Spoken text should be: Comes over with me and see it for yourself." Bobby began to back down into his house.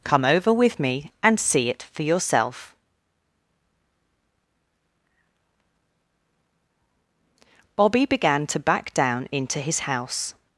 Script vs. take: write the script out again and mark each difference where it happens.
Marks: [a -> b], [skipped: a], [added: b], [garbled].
[Comes -> Come] over with me and see it for yourself." Bobby began to back down into his house.